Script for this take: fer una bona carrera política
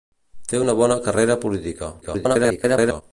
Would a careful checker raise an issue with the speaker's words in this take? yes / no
yes